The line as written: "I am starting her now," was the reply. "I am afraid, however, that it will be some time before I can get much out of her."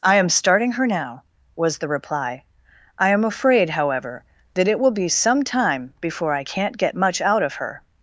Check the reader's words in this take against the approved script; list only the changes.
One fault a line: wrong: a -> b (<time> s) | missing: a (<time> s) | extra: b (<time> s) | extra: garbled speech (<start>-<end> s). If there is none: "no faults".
wrong: can -> can't (6.4 s)